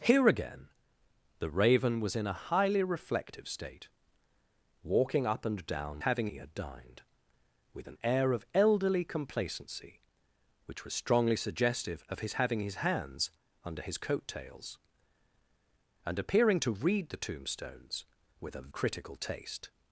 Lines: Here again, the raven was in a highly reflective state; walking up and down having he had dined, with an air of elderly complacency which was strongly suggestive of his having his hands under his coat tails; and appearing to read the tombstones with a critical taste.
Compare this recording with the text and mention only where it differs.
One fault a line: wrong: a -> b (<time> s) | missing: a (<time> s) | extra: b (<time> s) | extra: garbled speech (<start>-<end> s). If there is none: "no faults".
no faults